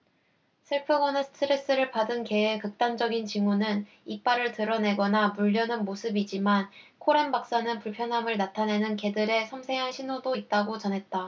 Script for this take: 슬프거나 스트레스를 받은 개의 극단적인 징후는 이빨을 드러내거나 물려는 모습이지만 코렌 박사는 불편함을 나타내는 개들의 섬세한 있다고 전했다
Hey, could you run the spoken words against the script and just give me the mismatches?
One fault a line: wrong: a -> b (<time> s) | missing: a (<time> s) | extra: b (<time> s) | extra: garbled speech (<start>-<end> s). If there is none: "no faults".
extra: 신호도 (9.9 s)